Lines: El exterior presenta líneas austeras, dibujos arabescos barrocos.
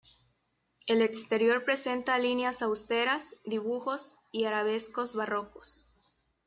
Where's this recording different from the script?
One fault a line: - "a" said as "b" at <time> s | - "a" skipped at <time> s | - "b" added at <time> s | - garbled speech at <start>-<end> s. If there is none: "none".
- "y" added at 4.3 s